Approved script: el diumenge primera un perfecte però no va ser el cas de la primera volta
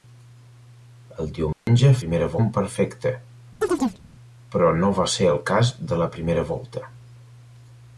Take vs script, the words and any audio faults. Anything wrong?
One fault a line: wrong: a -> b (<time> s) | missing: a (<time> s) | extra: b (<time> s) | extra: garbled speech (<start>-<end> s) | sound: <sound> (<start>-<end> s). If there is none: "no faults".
sound: dropout (1.5-1.7 s)
sound: chirp (3.6-4.0 s)